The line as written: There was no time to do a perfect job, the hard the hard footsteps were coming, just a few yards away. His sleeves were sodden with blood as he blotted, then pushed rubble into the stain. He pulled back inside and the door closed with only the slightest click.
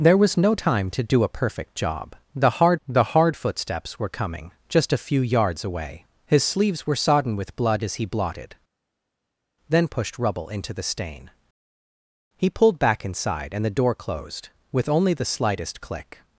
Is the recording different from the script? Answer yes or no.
no